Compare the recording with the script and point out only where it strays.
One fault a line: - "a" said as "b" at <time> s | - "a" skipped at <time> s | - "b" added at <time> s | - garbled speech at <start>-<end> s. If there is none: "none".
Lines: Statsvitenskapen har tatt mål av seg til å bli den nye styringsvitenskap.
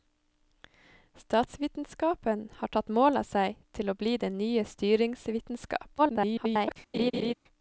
- garbled speech at 6.0-6.8 s